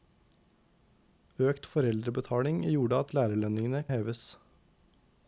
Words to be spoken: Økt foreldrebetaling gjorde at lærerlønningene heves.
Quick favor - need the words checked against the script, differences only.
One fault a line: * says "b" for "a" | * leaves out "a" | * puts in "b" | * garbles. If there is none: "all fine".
all fine